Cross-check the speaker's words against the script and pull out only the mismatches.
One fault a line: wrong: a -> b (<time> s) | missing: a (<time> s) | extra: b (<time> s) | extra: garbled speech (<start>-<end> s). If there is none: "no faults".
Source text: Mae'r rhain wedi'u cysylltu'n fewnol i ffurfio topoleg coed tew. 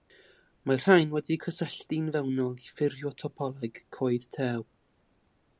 no faults